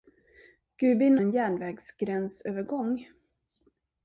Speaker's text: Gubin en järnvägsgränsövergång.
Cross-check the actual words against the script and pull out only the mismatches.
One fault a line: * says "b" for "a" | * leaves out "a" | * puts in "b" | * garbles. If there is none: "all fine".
all fine